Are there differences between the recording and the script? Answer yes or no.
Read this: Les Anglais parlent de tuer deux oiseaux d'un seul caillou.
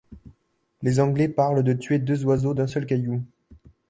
no